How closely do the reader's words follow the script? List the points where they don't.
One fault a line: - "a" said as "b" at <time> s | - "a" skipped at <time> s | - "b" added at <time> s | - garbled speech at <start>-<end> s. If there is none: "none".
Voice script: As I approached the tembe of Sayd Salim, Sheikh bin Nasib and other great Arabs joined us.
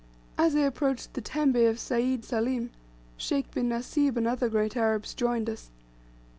none